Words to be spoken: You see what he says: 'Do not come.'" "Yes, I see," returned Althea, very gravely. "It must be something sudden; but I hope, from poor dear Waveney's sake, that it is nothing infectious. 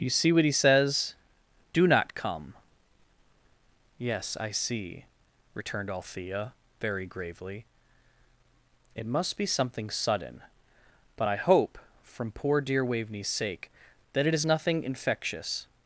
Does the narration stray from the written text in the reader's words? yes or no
no